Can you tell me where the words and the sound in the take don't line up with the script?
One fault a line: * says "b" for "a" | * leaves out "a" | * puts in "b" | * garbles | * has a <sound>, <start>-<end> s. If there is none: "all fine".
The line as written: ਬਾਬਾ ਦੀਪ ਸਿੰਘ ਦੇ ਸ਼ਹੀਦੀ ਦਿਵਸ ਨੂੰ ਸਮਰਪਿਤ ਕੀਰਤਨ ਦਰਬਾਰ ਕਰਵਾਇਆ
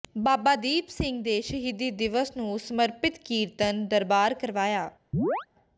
* has a chirp, 5.1-5.5 s